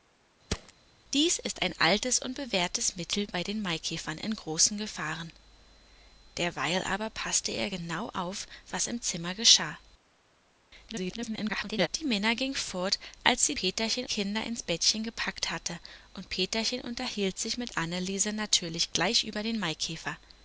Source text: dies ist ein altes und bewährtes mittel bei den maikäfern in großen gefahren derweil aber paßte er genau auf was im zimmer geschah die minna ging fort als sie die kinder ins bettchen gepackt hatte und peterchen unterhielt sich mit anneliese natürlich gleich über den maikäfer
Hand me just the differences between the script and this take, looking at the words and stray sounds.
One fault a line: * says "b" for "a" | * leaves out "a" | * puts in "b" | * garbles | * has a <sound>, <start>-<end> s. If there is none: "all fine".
* has a thud, 0.5-0.7 s
* garbles
* says "peterchen" for "die"